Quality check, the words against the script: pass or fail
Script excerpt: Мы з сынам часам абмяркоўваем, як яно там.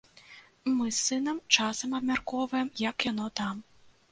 pass